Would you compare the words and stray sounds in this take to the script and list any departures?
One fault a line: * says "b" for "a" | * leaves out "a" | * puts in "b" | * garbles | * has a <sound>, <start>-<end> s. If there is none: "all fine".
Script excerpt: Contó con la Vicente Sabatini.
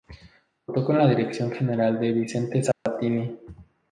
* puts in "dirección general de"
* has a dropout, 2.7-2.9 s